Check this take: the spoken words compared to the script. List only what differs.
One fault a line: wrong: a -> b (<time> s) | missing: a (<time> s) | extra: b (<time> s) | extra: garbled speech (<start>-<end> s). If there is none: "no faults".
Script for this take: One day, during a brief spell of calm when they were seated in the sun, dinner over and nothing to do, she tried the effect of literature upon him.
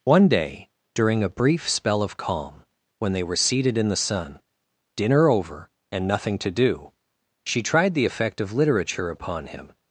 no faults